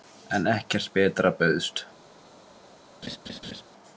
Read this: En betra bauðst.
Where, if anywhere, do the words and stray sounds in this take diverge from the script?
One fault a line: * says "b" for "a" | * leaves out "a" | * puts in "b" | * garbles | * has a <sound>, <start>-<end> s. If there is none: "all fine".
* puts in "ekkert"
* has a laugh, 3.0-3.6 s